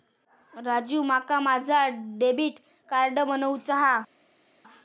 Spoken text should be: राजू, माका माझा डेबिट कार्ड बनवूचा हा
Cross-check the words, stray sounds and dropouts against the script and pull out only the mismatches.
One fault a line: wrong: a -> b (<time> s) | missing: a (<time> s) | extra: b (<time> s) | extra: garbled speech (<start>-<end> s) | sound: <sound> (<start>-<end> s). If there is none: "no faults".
no faults